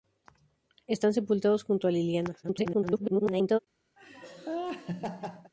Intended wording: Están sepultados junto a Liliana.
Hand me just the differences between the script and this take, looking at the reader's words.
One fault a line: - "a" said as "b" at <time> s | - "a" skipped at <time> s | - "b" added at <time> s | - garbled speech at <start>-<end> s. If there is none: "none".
- garbled speech at 2.4-3.6 s